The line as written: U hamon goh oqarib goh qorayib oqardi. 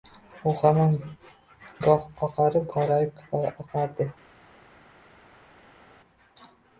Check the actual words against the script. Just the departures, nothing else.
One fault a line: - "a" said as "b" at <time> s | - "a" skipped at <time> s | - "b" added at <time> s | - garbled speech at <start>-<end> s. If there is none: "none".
- "goh" skipped at 2.7 s